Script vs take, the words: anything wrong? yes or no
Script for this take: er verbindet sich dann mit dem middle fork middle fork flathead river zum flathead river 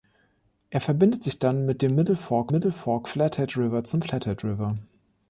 no